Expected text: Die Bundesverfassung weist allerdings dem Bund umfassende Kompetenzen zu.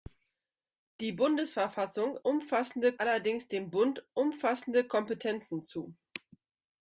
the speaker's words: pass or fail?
fail